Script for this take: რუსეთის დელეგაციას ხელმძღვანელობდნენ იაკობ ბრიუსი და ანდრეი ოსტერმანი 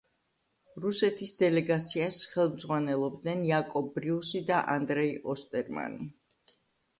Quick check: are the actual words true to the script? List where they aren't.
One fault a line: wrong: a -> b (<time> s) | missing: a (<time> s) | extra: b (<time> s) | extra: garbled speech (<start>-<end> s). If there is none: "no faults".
no faults